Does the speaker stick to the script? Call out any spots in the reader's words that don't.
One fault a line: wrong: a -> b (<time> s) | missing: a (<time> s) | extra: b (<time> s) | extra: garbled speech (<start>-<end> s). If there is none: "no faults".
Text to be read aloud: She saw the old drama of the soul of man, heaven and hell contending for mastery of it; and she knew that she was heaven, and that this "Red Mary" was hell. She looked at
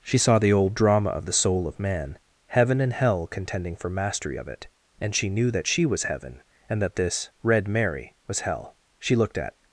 no faults